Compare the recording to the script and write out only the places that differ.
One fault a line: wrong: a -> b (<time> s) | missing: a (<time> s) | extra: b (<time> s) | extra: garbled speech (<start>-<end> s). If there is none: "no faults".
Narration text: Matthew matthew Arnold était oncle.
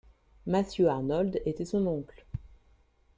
missing: matthew (0.9 s)
extra: son (1.6 s)